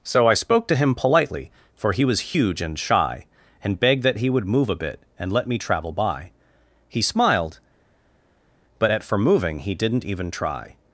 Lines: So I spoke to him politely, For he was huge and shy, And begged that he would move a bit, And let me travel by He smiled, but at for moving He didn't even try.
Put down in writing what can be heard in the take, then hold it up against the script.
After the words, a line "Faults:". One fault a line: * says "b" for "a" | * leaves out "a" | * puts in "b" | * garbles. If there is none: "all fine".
So I spoke to him politely, For he was huge and shy, And begged that he would move a bit, And let me travel by He smiled, but at for moving He didn't even try.
Faults:
all fine